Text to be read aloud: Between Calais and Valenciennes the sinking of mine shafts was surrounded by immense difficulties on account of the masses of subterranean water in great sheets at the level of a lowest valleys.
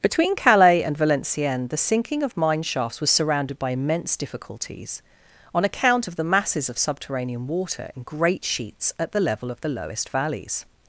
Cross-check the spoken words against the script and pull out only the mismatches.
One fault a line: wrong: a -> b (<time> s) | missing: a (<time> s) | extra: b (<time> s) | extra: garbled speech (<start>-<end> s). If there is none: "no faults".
wrong: a -> the (9.6 s)